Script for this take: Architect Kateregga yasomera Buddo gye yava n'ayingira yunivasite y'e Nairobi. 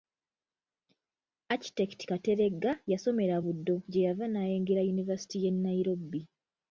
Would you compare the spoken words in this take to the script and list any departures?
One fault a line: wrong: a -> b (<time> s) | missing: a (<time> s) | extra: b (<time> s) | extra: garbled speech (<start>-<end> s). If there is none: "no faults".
no faults